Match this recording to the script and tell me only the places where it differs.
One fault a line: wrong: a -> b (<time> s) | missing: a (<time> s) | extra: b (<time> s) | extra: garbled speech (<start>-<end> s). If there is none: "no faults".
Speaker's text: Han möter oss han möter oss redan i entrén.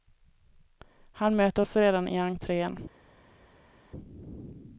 missing: han möter oss (1.8 s)